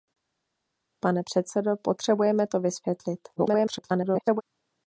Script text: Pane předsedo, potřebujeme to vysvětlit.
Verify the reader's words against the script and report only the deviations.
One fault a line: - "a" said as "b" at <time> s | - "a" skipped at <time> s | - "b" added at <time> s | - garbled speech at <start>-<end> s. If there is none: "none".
- garbled speech at 3.4-4.4 s